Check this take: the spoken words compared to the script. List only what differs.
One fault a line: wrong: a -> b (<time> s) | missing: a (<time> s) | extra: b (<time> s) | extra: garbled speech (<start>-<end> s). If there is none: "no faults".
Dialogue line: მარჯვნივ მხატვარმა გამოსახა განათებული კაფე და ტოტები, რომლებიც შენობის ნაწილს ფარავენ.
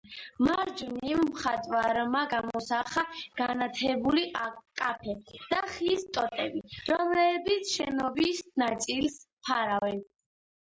extra: ხის (5.7 s)